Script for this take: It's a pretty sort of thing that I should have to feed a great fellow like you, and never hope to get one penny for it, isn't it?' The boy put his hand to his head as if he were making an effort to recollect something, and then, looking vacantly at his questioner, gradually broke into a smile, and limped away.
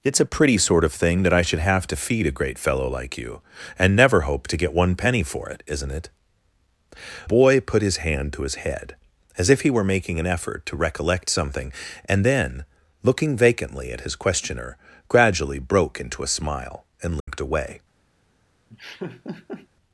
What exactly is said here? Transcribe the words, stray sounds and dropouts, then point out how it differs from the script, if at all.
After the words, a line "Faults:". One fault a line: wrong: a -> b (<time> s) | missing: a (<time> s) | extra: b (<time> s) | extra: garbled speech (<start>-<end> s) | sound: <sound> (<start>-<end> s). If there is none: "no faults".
It's a pretty sort of thing that I should have to feed a great fellow like you, and never hope to get one penny for it, isn't it?' Boy put his hand to his head as if he were making an effort to recollect something, and then, looking vacantly at his questioner, gradually broke into a smile, and limped away.
Faults:
missing: The (6.1 s)
sound: dropout (17.2-17.3 s)
sound: laugh (18.7-19.7 s)